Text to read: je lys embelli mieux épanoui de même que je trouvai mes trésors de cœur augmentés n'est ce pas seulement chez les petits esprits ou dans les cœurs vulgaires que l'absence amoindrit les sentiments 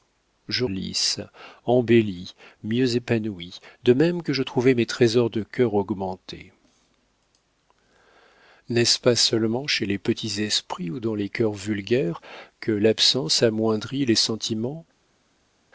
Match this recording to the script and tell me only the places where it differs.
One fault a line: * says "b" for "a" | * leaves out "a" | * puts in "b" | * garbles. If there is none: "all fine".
all fine